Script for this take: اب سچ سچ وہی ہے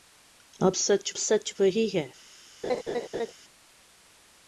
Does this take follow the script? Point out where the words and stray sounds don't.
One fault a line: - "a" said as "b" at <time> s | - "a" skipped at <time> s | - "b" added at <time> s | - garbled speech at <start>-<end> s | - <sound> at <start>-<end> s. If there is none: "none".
- laugh at 2.6-3.3 s